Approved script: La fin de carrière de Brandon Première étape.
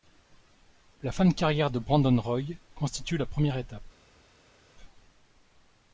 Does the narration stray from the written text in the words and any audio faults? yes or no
yes